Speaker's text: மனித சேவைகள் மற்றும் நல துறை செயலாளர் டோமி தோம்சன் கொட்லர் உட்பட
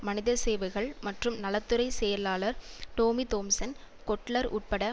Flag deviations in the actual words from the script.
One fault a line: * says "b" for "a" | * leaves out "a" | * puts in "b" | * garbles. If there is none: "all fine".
all fine